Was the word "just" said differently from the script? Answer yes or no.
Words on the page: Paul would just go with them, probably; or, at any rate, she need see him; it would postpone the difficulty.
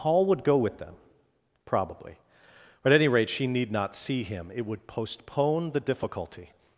yes